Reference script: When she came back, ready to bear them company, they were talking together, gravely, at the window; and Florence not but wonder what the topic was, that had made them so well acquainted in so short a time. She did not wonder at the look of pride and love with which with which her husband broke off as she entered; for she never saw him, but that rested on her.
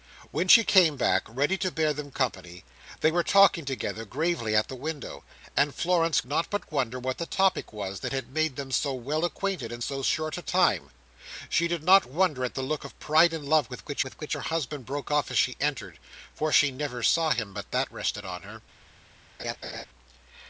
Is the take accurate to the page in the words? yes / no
yes